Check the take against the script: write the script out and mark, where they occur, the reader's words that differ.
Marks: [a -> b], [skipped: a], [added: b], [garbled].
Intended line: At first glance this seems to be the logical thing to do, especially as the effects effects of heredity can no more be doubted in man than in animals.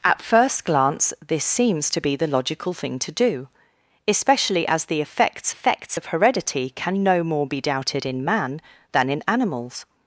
At first glance this seems to be the logical thing to do, especially as the effects effects of heredity can no more be doubted in man than in animals.